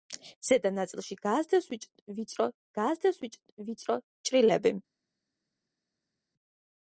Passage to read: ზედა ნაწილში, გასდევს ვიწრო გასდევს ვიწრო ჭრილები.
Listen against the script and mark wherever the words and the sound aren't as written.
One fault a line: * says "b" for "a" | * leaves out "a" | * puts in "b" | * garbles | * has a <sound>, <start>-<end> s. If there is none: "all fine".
all fine